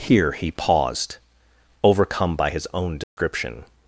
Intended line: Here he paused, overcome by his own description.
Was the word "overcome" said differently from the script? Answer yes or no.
no